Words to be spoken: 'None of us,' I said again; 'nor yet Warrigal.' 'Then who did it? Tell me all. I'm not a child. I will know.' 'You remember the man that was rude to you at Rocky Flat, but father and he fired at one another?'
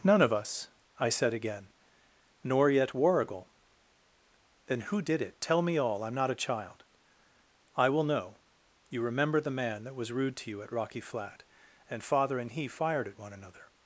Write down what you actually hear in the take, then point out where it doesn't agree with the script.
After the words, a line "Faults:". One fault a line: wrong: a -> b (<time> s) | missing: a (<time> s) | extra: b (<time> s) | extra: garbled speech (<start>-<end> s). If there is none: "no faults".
'None of us,' I said again; 'nor yet Warrigal.' 'Then who did it? Tell me all. I'm not a child. I will know.' 'You remember the man that was rude to you at Rocky Flat, and father and he fired at one another?'
Faults:
wrong: but -> and (11.9 s)